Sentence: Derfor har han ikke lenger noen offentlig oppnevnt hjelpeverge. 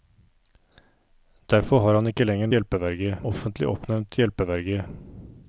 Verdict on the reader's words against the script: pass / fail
fail